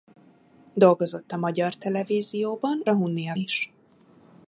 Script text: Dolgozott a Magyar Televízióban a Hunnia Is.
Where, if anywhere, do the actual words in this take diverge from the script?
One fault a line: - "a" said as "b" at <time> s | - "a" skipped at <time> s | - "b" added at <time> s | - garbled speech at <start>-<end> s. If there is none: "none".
none